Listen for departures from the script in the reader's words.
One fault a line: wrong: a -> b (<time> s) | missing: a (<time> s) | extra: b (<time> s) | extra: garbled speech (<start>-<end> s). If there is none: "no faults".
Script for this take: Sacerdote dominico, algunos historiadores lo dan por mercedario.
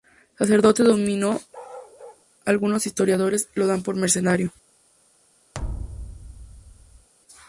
no faults